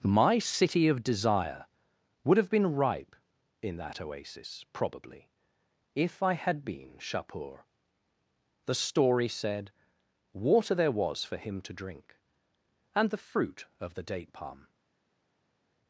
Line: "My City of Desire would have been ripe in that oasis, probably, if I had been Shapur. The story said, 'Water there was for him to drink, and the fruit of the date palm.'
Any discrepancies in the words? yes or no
no